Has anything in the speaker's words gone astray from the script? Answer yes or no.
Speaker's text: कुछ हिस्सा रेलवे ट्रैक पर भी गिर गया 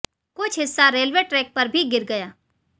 no